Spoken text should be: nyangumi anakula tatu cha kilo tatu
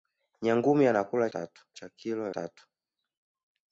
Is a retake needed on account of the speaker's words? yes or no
no